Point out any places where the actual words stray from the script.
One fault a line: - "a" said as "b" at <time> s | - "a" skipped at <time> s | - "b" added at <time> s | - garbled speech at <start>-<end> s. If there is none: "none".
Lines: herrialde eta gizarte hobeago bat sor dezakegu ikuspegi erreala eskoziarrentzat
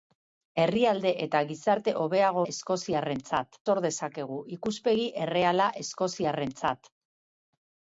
- "bat" said as "eskoziarrentzat" at 2.5 s